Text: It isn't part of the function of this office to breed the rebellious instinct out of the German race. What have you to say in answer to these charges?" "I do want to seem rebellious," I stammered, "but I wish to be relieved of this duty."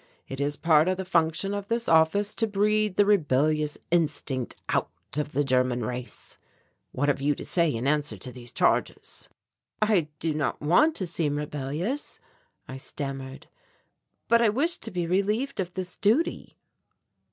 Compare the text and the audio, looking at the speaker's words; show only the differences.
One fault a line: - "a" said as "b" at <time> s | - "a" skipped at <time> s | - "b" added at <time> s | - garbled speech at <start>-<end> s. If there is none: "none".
- "isn't" said as "is" at 0.4 s
- "not" added at 10.3 s